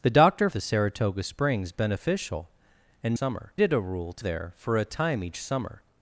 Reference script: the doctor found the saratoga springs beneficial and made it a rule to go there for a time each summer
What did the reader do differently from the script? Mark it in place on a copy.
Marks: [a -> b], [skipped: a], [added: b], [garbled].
the doctor [skipped: found] the saratoga springs beneficial and [made -> summer] it a rule to [skipped: go] there for a time each summer